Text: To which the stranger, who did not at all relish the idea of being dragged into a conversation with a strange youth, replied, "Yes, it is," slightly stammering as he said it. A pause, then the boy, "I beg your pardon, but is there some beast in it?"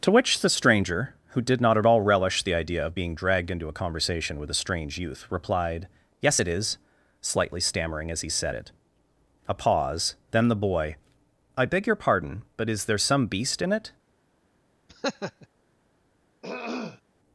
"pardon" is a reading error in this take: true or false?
false